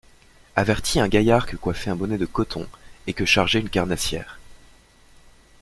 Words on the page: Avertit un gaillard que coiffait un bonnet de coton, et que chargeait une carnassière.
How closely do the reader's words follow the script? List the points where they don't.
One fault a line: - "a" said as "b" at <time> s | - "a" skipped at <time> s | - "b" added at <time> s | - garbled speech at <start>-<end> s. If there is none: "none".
none